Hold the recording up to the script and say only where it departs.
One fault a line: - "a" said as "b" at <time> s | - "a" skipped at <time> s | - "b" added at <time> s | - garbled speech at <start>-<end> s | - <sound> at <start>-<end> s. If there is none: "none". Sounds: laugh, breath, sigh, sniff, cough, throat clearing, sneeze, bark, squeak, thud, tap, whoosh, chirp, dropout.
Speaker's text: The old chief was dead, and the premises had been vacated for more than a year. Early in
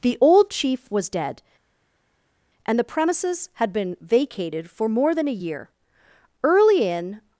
none